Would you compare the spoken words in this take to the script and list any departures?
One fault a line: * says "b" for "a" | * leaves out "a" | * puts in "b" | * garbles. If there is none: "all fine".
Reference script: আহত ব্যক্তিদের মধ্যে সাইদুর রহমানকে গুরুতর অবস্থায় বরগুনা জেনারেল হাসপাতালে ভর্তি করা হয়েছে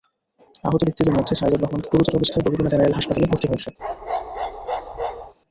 * leaves out "করা"